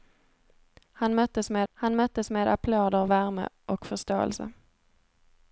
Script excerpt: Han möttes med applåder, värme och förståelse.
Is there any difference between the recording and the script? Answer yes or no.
yes